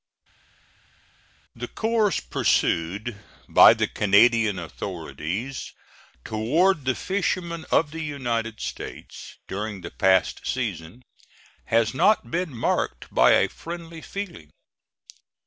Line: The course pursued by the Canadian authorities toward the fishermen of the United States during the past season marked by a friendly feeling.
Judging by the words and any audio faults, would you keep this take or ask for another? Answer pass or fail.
fail